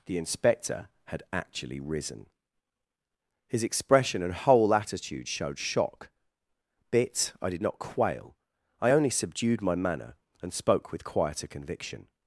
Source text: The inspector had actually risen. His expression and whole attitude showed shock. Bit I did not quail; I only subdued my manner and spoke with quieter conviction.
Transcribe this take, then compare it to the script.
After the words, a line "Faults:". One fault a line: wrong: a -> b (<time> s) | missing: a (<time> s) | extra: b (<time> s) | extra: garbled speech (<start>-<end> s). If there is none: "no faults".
The inspector had actually risen. His expression and whole attitude showed shock. Bit I did not quail; I only subdued my manner and spoke with quieter conviction.
Faults:
no faults